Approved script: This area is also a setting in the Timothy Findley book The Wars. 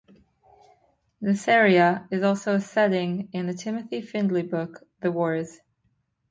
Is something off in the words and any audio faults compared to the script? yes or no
no